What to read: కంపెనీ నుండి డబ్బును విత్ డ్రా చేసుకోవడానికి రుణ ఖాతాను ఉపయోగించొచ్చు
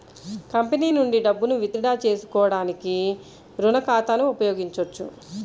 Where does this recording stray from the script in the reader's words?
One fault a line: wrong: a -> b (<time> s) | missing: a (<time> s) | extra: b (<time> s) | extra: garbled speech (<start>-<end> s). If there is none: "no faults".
no faults